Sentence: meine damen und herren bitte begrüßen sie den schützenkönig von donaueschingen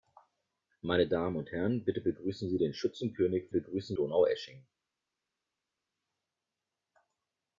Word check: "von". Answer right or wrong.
wrong